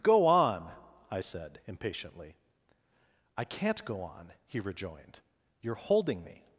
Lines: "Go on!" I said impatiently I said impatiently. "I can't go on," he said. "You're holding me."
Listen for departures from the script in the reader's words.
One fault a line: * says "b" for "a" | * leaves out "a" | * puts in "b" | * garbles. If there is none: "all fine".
* leaves out "said impatiently I"
* says "rejoined" for "said"